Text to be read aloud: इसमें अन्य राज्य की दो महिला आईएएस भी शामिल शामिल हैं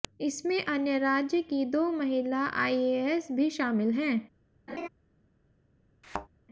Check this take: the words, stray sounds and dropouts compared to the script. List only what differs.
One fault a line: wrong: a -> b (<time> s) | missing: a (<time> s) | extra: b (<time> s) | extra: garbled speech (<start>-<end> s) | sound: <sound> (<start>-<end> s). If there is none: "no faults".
missing: शामिल (3.9 s)
sound: laugh (4.7-4.9 s)
sound: thud (6.0-6.3 s)